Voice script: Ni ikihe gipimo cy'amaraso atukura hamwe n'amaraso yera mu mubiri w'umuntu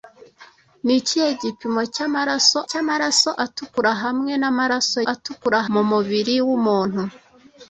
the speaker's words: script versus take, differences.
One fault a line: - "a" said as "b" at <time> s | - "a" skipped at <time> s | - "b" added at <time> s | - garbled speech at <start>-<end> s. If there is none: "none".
- "cy'amaraso" added at 2.7 s
- "yera" said as "atukura" at 5.1 s